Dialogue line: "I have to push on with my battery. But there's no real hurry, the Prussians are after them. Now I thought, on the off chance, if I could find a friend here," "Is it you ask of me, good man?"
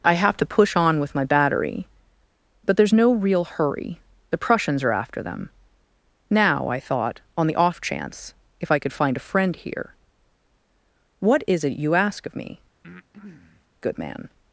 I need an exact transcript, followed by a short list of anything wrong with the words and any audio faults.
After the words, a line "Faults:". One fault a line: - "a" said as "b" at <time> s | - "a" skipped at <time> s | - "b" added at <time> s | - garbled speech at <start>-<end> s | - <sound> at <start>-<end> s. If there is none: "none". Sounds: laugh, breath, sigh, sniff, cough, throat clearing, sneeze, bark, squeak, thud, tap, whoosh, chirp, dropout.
"I have to push on with my battery. But there's no real hurry, the Prussians are after them. Now I thought, on the off chance, if I could find a friend here," "What is it you ask of me, good man?"
Faults:
- "What" added at 11.2 s
- breath at 12.8-13.7 s